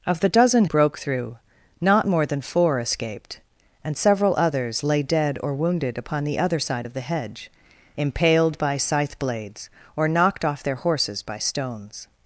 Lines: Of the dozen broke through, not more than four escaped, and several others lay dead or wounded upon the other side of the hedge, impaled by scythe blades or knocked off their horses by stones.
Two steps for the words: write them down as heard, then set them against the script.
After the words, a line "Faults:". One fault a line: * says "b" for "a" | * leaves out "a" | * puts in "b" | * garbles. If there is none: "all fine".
Of the dozen broke through, not more than four escaped, and several others lay dead or wounded upon the other side of the hedge, impaled by scythe blades or knocked off their horses by stones.
Faults:
all fine